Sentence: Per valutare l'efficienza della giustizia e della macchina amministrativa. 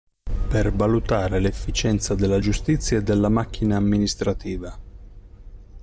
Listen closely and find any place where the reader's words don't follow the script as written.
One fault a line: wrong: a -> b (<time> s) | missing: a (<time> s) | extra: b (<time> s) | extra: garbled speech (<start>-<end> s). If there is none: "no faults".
no faults